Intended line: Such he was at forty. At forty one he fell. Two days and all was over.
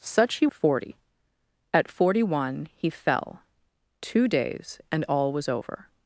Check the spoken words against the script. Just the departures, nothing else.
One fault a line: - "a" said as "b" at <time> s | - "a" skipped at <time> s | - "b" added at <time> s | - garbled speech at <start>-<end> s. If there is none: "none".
- "was at" skipped at 0.5 s